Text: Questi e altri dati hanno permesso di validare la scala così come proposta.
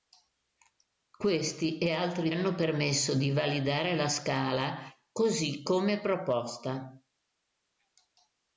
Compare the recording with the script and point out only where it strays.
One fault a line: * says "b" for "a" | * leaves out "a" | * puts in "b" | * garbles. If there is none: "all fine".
* leaves out "dati"